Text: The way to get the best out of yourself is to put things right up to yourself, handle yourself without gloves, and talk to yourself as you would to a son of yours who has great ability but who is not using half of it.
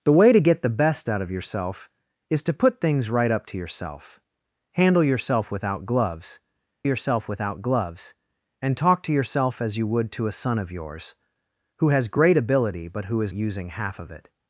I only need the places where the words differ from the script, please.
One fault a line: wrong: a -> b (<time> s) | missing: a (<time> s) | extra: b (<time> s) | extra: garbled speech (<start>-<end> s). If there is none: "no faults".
extra: yourself without gloves (6.8 s)
missing: not (13.3 s)